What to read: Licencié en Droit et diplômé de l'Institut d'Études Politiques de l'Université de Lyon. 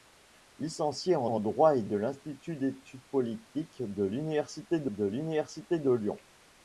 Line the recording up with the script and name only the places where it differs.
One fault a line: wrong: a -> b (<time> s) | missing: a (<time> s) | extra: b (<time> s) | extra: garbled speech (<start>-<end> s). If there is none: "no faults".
extra: en (1.2 s)
missing: diplômé (1.8 s)
extra: de l'Université de (4.9 s)